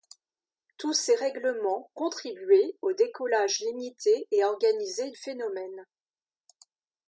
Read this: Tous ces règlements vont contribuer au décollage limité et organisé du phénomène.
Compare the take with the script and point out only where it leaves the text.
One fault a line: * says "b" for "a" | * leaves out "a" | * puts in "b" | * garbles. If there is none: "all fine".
* leaves out "vont"
* leaves out "du"